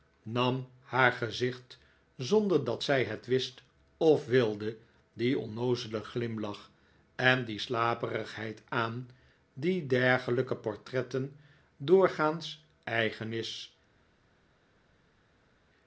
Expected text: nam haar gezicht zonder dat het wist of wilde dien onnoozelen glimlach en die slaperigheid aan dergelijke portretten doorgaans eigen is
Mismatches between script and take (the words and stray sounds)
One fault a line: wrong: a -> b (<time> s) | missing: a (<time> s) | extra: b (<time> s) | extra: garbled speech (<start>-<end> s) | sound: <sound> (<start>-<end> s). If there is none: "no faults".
extra: zij (2.8 s)
extra: die (9.5 s)